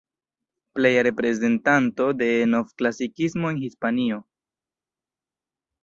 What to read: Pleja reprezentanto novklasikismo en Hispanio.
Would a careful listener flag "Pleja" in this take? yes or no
no